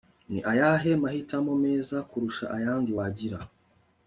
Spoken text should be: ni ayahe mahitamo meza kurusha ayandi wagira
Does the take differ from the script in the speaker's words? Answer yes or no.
no